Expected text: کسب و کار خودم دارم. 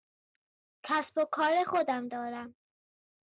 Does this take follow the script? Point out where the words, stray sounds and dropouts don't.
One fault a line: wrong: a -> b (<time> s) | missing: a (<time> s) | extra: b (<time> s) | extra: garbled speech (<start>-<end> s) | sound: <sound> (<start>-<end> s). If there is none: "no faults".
no faults